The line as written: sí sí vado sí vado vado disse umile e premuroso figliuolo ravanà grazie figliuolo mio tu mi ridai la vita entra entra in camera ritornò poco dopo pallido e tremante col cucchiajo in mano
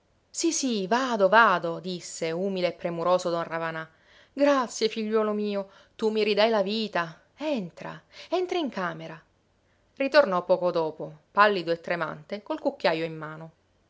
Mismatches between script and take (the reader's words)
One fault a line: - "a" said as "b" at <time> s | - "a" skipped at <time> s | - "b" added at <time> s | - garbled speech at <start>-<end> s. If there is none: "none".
- "sí" skipped at 1.3 s
- "vado" skipped at 1.8 s
- "figliuolo" said as "don" at 3.3 s